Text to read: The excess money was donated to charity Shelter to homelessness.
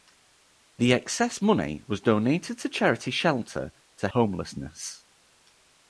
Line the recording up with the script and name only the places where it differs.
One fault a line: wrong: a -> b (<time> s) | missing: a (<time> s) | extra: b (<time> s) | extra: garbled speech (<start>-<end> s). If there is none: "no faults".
no faults